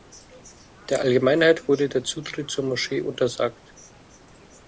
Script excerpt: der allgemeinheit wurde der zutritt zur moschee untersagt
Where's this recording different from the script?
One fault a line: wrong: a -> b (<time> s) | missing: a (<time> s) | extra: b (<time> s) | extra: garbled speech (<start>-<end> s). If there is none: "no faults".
no faults